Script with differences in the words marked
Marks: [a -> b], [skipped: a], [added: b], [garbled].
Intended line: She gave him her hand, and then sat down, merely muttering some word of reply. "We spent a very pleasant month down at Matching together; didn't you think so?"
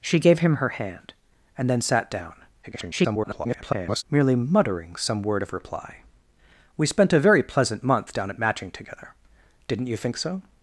She gave him her hand, and then sat down, [garbled] merely muttering some word of reply. "We spent a very pleasant month down at Matching together; didn't you think so?"